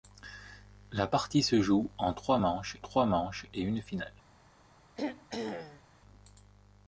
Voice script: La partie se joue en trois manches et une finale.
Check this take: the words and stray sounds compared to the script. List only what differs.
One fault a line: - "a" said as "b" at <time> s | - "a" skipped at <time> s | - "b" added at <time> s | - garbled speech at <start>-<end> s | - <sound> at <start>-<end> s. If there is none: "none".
- "trois manches" added at 2.8 s
- throat clearing at 4.9-5.8 s